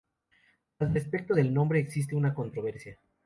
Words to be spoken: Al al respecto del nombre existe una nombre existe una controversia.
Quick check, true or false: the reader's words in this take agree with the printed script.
false